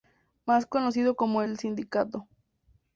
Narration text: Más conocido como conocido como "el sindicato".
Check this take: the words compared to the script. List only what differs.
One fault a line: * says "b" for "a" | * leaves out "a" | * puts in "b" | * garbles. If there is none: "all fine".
* leaves out "conocido como"